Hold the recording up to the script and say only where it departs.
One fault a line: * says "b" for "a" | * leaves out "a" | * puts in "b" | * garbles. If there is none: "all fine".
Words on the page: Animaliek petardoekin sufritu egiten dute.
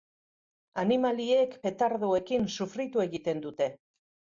all fine